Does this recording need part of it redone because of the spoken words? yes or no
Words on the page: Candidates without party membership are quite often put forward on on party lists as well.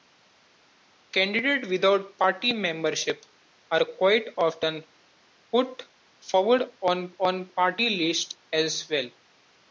no